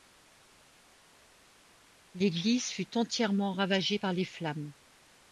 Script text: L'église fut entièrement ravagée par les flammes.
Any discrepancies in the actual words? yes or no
no